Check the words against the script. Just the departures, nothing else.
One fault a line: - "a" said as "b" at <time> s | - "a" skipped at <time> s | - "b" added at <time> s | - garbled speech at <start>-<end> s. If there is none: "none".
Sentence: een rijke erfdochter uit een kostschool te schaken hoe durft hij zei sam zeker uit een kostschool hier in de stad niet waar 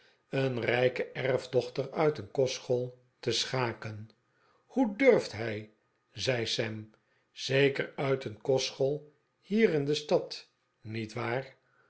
none